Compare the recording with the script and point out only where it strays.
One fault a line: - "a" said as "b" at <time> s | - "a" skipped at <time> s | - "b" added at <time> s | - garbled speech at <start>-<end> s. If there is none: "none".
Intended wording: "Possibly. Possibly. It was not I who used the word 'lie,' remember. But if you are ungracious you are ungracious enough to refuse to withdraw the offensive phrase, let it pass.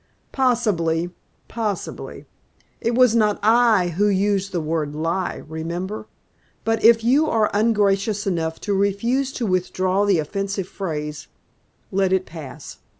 - "you are ungracious" skipped at 8.2 s